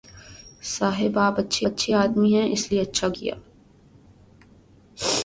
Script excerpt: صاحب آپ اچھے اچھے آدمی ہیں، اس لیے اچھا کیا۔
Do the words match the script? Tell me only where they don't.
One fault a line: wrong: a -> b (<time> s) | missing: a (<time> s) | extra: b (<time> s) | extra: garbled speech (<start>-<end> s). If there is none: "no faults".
no faults